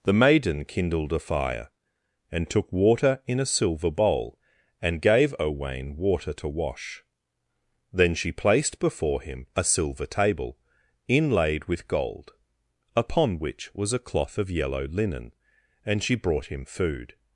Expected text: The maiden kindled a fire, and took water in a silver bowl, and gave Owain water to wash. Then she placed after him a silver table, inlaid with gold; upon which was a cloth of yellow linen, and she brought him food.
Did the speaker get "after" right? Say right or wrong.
wrong